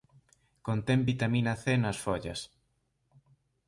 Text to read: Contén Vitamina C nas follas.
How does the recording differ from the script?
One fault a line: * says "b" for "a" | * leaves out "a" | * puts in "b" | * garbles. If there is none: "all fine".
all fine